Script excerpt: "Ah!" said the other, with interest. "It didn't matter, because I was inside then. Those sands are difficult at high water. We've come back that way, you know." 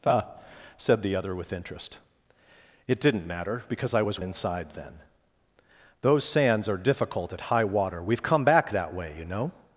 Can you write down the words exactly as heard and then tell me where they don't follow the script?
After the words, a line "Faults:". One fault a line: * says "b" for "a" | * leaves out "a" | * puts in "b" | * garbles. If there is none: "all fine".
"Ah!" said the other, with interest. "It didn't matter, because I was inside then. Those sands are difficult at high water. We've come back that way, you know."
Faults:
all fine